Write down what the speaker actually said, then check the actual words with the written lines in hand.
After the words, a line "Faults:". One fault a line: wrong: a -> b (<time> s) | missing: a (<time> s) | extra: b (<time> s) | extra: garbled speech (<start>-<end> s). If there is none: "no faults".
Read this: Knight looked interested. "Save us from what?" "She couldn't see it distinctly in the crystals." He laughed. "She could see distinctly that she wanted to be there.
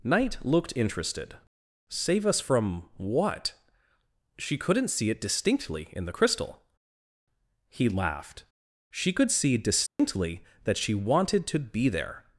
Knight looked interested. "Save us from what?" "She couldn't see it distinctly in the crystal." He laughed. "She could see distinctly that she wanted to be there.
Faults:
wrong: crystals -> crystal (6.1 s)